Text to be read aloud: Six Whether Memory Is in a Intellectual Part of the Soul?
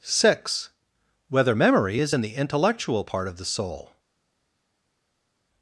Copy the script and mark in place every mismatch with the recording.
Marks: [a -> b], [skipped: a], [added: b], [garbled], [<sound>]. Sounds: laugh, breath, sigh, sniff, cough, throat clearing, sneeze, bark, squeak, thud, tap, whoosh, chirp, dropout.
Six Whether Memory Is in [a -> the] Intellectual Part of the Soul?